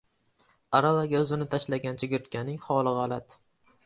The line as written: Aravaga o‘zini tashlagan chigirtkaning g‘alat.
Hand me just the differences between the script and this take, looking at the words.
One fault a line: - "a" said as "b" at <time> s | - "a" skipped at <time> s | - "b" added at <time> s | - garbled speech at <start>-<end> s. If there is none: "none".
- "holi" added at 2.7 s